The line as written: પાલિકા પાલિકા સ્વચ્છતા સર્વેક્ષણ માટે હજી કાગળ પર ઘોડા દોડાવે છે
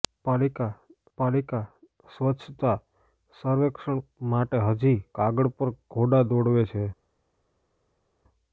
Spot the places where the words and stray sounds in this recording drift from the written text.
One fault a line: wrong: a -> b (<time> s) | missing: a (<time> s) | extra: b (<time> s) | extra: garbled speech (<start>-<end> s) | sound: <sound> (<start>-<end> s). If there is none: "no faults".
no faults